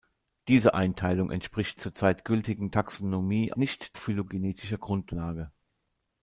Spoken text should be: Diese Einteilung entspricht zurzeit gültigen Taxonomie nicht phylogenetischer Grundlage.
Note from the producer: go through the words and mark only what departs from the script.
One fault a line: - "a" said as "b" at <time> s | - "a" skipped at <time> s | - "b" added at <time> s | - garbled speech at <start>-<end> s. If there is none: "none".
none